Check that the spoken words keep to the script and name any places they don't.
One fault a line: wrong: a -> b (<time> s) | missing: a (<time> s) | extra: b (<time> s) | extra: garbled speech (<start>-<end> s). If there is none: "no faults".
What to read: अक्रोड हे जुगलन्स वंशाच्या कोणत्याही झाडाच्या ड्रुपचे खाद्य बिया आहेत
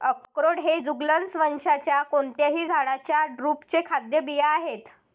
no faults